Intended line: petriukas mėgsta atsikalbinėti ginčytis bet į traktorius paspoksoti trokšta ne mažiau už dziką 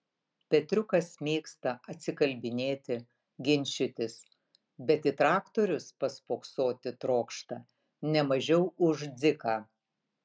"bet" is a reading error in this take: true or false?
false